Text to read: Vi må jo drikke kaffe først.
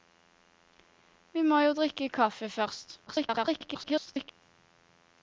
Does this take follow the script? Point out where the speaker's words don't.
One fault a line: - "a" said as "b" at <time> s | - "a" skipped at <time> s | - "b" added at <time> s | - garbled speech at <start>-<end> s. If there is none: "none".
- garbled speech at 3.1-4.3 s